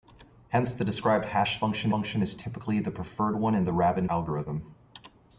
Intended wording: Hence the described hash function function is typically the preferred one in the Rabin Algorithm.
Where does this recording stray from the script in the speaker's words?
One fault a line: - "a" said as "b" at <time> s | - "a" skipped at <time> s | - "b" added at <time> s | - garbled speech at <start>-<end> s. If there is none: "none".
none